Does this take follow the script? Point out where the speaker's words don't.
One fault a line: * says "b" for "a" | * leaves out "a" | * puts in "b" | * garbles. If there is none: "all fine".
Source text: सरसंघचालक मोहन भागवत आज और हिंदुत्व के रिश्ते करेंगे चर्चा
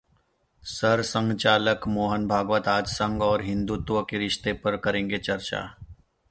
* puts in "संघ"
* puts in "पर"